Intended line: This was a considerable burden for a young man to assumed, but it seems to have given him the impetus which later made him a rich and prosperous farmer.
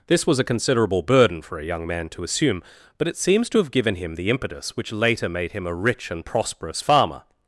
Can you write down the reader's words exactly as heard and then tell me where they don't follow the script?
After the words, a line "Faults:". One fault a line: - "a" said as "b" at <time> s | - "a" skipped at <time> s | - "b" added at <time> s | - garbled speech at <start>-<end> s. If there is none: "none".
This was a considerable burden for a young man to assume, but it seems to have given him the impetus which later made him a rich and prosperous farmer.
Faults:
- "assumed" said as "assume" at 2.2 s